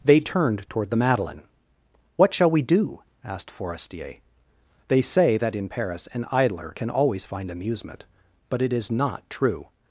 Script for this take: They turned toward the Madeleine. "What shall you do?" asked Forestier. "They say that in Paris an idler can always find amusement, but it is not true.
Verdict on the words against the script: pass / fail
fail